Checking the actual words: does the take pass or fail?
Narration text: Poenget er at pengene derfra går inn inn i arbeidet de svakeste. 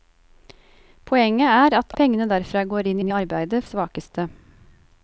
pass